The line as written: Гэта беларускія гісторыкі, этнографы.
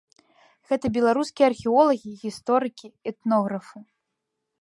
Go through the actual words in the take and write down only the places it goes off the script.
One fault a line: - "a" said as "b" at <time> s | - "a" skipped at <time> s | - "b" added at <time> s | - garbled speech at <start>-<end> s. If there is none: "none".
- "археолагі" added at 1.5 s